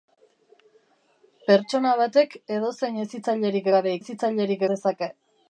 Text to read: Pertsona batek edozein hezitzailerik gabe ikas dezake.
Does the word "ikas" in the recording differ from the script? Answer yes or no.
yes